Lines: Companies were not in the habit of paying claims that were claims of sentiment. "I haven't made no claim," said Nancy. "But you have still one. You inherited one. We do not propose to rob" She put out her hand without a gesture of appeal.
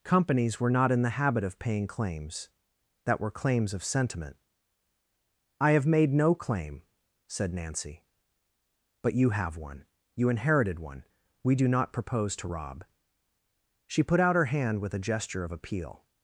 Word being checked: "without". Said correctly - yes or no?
no